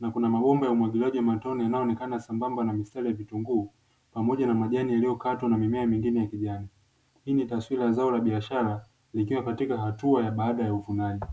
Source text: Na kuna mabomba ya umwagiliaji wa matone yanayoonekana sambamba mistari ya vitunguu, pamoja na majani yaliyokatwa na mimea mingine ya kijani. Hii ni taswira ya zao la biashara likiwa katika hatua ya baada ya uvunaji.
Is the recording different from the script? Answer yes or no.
yes